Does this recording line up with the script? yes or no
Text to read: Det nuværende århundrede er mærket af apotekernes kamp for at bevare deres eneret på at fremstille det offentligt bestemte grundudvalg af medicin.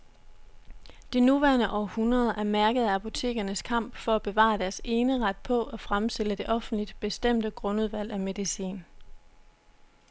yes